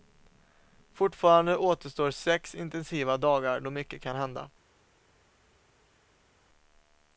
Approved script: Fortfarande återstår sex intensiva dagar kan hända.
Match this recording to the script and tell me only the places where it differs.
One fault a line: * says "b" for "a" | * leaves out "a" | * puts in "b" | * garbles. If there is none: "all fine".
* puts in "då mycket"